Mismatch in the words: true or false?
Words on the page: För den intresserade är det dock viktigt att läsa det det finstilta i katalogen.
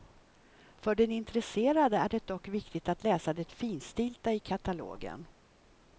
true